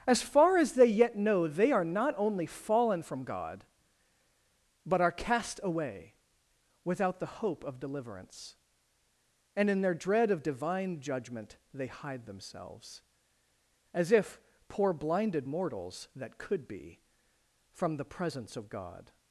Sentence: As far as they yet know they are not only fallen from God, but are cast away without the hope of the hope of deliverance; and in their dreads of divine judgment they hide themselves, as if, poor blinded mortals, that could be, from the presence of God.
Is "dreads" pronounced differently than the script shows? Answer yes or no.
yes